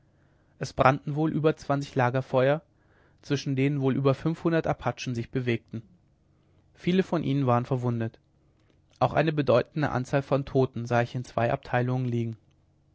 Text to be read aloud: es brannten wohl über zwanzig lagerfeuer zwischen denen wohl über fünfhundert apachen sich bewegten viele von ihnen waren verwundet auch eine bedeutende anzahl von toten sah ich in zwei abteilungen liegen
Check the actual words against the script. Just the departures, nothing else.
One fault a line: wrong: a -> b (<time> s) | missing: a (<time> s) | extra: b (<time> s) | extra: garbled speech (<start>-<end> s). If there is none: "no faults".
no faults